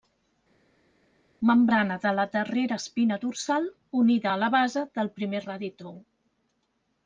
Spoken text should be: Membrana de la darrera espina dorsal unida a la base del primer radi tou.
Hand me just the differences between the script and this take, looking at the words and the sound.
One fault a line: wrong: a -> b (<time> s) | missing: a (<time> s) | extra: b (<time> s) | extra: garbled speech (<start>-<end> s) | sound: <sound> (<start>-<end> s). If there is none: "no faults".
no faults